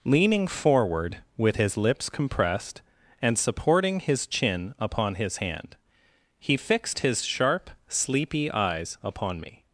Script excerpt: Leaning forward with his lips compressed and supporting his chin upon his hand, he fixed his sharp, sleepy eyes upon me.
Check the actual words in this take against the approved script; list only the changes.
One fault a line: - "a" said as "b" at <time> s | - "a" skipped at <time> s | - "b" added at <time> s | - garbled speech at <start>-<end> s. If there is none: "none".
none